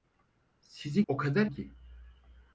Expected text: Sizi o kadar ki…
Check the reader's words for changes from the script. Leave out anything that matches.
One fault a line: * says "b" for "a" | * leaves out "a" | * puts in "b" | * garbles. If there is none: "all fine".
all fine